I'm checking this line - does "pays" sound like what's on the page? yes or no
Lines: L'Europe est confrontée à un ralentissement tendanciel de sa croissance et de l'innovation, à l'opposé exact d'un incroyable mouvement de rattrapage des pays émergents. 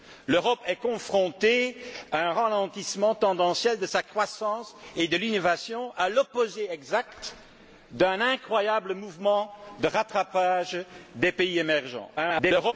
yes